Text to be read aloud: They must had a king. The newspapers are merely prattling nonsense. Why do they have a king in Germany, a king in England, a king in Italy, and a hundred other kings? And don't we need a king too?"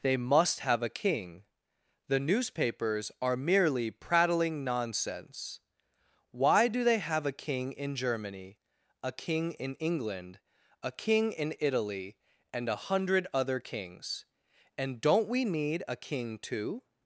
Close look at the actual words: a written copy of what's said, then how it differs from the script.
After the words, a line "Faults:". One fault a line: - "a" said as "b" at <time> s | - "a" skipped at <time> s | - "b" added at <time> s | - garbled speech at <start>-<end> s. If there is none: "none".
They must have a king. The newspapers are merely prattling nonsense. Why do they have a king in Germany, a king in England, a king in Italy, and a hundred other kings? And don't we need a king too?"
Faults:
- "had" said as "have" at 0.6 s